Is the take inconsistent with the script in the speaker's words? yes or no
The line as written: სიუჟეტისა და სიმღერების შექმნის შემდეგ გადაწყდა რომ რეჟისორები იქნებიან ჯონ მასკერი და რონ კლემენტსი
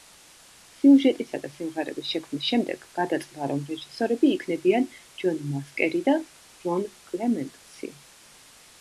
no